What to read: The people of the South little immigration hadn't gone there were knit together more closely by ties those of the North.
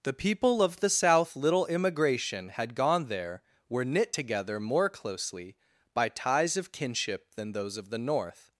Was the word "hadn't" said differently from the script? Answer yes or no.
yes